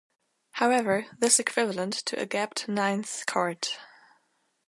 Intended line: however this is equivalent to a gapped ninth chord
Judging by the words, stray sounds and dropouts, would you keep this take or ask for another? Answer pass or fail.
fail